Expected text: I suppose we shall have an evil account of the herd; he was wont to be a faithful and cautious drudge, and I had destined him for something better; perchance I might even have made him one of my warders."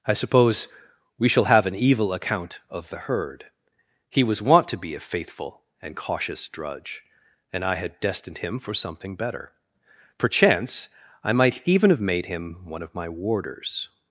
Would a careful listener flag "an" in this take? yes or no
no